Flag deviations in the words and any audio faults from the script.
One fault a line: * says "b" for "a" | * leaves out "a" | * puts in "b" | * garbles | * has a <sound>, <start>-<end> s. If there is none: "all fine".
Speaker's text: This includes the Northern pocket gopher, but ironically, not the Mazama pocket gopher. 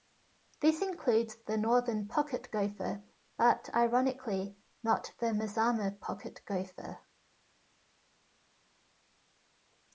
all fine